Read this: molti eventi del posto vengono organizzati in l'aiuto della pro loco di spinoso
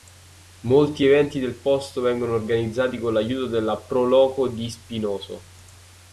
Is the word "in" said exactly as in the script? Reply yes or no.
no